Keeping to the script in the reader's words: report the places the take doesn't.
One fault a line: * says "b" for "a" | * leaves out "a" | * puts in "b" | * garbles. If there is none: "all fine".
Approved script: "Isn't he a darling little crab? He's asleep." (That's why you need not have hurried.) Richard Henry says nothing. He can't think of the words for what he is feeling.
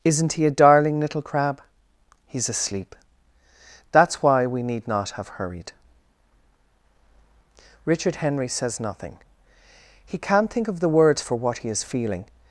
* says "we" for "you"